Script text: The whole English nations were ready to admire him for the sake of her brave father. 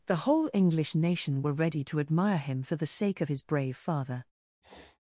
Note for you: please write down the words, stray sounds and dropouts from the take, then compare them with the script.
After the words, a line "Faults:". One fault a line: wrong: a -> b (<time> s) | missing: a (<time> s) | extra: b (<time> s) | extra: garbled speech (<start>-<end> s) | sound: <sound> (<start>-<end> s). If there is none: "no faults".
The whole English nation were ready to admire him for the sake of his brave father.
Faults:
wrong: nations -> nation (0.9 s)
wrong: her -> his (3.3 s)
sound: sniff (4.6-5.0 s)